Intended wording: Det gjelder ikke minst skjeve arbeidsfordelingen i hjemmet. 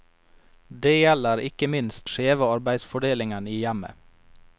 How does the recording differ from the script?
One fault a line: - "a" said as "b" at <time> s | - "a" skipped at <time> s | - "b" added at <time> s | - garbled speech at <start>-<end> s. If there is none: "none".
none